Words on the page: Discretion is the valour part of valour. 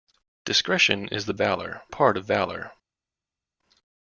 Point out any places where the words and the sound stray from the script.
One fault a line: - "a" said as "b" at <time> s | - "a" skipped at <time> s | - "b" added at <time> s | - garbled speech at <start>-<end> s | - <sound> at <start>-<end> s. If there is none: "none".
none